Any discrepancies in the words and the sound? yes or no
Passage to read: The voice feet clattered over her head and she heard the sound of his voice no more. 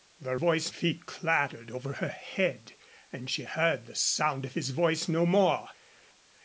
no